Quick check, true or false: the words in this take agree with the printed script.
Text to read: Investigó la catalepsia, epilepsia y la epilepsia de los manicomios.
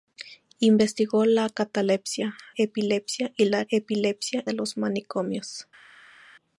true